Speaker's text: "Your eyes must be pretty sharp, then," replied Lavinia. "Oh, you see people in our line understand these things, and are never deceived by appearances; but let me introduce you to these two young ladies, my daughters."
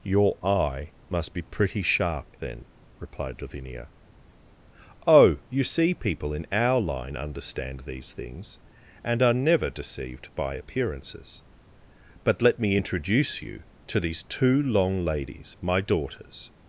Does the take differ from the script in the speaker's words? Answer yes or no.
yes